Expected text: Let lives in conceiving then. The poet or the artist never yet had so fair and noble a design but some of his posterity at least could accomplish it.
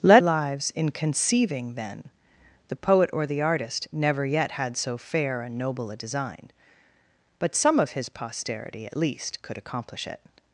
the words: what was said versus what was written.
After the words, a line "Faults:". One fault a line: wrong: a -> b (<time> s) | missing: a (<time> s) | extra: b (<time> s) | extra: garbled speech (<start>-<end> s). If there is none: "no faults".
Let lives in conceiving then. The poet or the artist never yet had so fair and noble a design but some of his posterity at least could accomplish it.
Faults:
no faults